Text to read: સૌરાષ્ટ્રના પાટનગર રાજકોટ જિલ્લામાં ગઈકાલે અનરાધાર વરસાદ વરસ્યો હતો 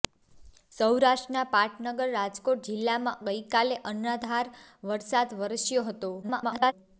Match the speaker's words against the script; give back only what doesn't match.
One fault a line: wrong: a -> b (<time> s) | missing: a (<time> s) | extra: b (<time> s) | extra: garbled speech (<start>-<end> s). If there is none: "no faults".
extra: garbled speech (6.2-6.7 s)